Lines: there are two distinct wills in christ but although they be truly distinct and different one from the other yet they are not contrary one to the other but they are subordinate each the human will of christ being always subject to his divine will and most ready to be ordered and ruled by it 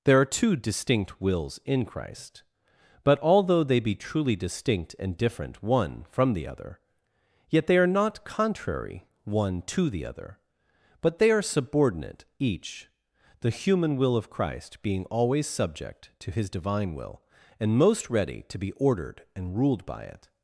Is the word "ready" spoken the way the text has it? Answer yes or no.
yes